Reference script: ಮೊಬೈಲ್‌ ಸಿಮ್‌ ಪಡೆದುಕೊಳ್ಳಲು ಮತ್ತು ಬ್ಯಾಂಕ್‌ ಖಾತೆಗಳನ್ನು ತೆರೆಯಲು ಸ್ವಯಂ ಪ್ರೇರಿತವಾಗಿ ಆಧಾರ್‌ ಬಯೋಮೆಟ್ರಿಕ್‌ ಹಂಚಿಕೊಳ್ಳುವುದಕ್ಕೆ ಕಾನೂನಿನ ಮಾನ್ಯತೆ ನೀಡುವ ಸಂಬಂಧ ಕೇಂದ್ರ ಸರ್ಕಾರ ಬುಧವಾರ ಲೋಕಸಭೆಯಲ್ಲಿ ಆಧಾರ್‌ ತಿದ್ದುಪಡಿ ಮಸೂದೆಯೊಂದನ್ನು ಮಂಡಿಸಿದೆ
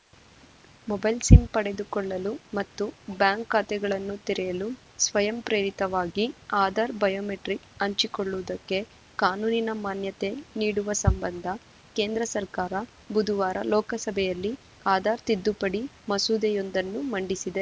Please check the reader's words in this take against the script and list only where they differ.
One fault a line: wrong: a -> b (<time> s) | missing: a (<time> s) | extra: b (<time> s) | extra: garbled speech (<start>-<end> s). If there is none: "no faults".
no faults